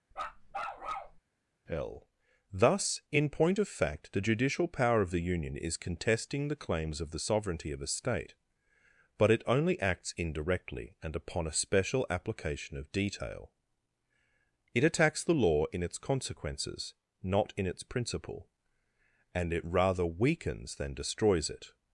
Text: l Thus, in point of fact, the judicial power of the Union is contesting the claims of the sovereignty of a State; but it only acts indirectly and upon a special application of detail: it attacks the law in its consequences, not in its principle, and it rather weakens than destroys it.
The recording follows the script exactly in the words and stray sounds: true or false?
false